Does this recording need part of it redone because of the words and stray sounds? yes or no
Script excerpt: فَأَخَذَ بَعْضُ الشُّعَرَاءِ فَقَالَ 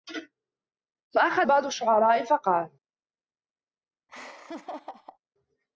yes